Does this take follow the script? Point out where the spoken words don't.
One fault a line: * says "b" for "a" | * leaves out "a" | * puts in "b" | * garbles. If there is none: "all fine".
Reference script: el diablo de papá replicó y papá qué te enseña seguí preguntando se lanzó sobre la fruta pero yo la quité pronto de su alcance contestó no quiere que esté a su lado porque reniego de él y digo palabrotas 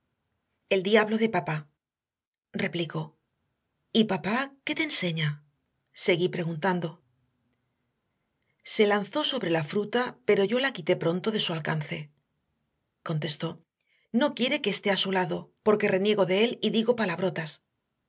all fine